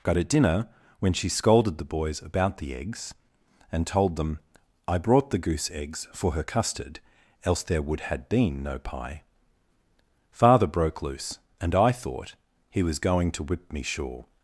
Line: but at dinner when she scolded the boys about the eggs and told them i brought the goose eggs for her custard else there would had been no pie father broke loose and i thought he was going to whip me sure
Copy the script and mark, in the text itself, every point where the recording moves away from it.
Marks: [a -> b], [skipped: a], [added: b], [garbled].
but at dinner when she scolded the boys about the eggs and told them i brought the goose eggs for her custard else there would had been no pie father broke loose and i thought he was going to whip me sure